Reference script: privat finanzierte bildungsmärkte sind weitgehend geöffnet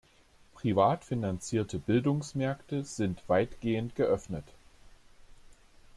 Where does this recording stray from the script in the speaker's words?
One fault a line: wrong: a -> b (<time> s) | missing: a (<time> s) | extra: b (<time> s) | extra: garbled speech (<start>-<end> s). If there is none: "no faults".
no faults